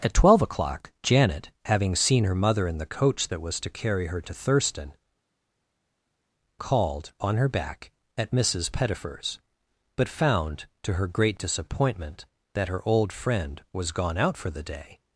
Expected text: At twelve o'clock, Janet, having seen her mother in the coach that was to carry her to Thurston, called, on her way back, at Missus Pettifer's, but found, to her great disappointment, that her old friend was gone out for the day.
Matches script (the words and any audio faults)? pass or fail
fail